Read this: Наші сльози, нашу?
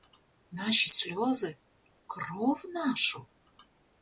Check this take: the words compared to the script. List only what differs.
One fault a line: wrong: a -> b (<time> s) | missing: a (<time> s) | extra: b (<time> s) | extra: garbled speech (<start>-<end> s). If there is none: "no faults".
extra: кров (2.1 s)